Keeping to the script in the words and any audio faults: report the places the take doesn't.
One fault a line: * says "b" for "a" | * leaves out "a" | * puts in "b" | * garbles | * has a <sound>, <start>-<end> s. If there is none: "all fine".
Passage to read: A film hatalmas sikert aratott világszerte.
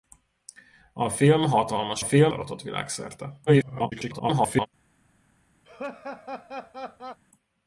* says "film" for "sikert"
* garbles
* has a laugh, 5.6-7.2 s